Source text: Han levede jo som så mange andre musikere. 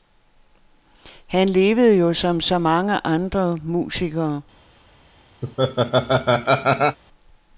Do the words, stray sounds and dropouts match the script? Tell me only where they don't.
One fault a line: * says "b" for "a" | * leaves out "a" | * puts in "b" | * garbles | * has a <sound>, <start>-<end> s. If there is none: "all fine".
* has a laugh, 5.4-7.0 s